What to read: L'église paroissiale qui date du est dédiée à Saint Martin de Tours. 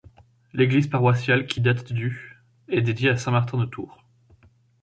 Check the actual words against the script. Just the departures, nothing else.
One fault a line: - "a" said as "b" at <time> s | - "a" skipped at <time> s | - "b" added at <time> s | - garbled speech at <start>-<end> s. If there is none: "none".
none